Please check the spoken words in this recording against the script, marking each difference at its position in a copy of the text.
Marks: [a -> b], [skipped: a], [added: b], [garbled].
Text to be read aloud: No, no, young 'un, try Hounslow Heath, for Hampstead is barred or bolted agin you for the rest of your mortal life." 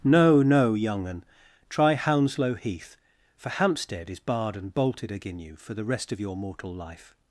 No, no, young 'un, try Hounslow Heath, for Hampstead is barred [or -> and] bolted agin you for the rest of your mortal life."